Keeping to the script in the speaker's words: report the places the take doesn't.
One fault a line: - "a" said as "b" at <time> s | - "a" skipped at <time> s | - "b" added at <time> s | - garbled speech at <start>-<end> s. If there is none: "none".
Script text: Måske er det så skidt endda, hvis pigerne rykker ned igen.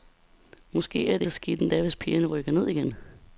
none